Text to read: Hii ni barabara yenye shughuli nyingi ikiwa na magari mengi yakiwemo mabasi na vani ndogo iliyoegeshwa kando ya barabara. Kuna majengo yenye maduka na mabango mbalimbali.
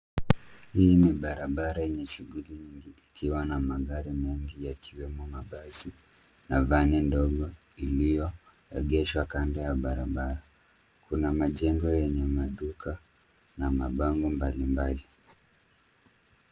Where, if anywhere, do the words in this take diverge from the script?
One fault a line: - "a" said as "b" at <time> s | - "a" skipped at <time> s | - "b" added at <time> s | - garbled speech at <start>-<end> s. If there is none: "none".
none